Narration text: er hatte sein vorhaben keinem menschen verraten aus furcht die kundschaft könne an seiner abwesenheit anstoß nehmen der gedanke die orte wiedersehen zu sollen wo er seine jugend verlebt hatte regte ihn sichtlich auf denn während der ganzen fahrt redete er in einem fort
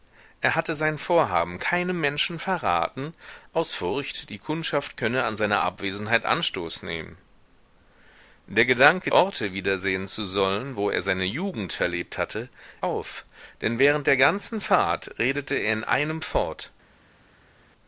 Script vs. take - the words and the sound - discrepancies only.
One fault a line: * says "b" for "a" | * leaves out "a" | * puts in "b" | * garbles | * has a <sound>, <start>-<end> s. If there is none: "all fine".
* leaves out "die"
* leaves out "regte ihn sichtlich"